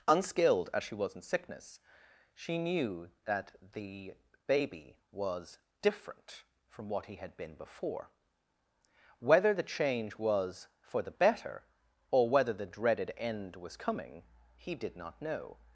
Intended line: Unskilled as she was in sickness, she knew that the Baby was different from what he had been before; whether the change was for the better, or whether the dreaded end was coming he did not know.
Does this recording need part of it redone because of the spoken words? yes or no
no